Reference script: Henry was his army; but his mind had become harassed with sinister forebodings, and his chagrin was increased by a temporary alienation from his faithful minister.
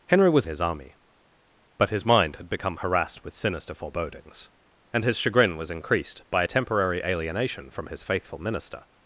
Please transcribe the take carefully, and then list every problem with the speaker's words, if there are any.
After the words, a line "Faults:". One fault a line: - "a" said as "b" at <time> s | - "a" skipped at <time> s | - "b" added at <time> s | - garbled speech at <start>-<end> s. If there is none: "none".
Henry was his army; but his mind had become harassed with sinister forebodings, and his chagrin was increased by a temporary alienation from his faithful minister.
Faults:
none